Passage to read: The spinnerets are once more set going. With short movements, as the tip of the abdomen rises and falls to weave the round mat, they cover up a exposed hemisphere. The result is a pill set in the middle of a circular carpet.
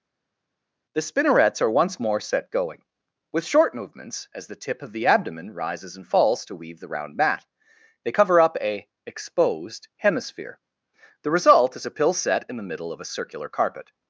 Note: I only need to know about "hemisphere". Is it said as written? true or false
true